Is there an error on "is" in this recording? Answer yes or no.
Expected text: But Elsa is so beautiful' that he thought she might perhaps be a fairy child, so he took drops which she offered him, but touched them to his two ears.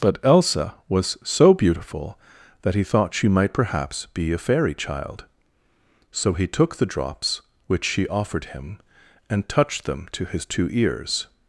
yes